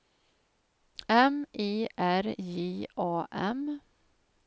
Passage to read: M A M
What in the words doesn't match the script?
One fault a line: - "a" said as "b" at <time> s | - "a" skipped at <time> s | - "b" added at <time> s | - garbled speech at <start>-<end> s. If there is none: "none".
- "I R J" added at 1.6 s